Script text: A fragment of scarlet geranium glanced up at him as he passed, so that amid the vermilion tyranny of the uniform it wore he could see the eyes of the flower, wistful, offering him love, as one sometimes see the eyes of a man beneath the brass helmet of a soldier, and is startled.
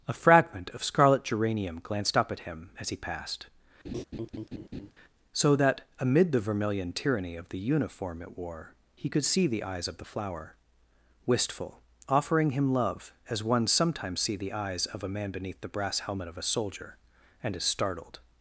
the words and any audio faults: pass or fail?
fail